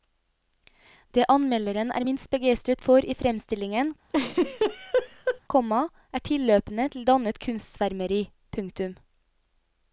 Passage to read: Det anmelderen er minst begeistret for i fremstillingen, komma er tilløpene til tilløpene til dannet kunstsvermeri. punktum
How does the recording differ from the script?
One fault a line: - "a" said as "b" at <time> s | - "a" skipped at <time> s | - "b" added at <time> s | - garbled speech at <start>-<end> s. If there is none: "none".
- "tilløpene til" skipped at 7.1 s